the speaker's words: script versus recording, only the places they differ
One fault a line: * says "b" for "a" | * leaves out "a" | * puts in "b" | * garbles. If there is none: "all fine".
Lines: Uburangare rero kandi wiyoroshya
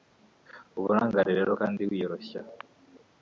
all fine